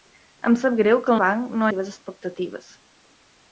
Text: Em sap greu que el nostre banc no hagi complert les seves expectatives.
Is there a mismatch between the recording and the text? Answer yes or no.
yes